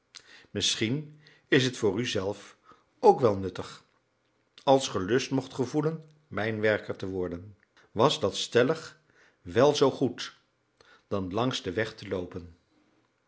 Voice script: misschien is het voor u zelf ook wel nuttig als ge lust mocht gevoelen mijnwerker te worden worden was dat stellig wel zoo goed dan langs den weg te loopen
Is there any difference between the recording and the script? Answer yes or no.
yes